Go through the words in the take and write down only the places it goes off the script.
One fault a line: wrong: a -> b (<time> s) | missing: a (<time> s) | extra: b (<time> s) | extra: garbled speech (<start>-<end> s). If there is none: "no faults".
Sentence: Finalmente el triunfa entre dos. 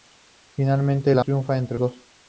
no faults